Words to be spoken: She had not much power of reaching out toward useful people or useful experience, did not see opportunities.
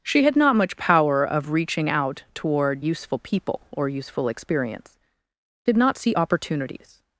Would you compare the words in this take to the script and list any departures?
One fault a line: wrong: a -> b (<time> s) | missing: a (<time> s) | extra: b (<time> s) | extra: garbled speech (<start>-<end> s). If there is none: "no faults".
no faults